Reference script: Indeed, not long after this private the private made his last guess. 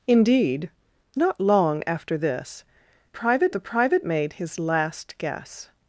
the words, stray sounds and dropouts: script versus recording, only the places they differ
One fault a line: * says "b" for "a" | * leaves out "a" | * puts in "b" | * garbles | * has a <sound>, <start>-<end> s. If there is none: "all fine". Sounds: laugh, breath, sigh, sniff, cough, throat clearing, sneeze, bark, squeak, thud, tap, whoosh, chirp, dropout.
all fine